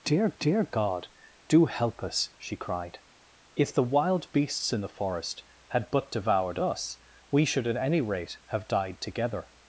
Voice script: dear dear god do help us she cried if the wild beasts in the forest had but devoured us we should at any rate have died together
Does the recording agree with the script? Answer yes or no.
yes